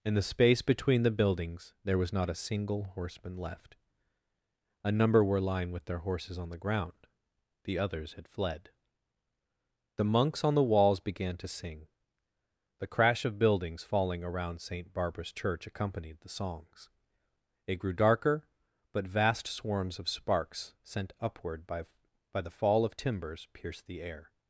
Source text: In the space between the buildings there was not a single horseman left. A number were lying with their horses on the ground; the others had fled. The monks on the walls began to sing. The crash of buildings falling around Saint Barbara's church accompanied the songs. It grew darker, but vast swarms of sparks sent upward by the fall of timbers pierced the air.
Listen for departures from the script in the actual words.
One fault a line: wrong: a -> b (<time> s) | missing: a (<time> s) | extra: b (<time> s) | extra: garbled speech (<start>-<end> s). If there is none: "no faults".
extra: by (22.3 s)